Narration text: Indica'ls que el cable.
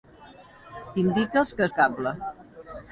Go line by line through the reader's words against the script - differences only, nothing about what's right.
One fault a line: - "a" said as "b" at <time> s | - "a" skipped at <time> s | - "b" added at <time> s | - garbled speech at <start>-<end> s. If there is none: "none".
none